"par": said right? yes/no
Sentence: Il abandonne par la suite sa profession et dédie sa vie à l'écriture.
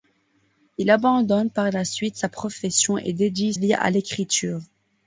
yes